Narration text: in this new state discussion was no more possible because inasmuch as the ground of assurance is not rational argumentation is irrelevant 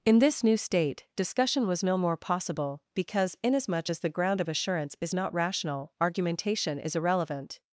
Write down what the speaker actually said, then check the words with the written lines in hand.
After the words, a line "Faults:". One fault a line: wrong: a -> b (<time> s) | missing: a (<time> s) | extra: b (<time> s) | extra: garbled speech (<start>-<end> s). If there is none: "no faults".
in this new state discussion was no more possible because inasmuch as the ground of assurance is not rational argumentation is irrelevant
Faults:
no faults